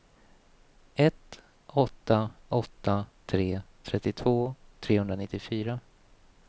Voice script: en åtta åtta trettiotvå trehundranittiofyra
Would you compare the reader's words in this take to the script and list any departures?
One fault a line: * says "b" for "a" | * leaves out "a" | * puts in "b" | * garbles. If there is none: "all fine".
* says "ett" for "en"
* puts in "tre"